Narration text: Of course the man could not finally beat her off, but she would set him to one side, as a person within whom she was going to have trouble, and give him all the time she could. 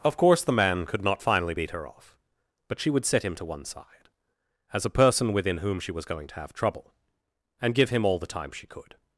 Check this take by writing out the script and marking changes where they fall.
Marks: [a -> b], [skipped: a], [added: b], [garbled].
Of course the man could not finally beat her off, but she would set him to one side, as a person within whom she was going to have trouble, and give him all the time she could.